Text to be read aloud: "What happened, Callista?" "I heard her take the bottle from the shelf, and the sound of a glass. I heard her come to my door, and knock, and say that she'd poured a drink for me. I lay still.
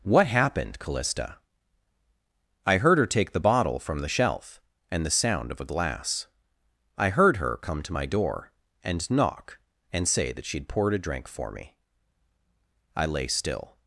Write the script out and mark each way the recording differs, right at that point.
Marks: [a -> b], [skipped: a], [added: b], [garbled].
"What happened, Callista?" "I heard her take the bottle from the shelf, and the sound of a glass. I heard her come to my door, and knock, and say that she'd poured a drink for me. I lay still.